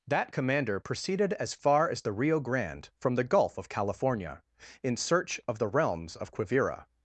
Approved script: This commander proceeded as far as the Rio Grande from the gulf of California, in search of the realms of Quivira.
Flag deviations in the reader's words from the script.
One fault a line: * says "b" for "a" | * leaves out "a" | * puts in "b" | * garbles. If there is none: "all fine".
* says "That" for "This"